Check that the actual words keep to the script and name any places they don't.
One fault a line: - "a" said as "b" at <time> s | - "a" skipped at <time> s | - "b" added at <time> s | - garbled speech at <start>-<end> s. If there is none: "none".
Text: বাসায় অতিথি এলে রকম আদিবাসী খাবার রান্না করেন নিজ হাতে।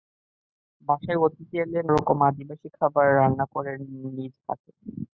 none